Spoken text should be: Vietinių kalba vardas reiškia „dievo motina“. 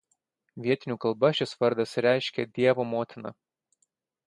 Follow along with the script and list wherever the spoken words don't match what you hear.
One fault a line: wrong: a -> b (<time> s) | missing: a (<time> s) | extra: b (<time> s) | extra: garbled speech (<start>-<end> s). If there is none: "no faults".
extra: šis (1.4 s)